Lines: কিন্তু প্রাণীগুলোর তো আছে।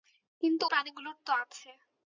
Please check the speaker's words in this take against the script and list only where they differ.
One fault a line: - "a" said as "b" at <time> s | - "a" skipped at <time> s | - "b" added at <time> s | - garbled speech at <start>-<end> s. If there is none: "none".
none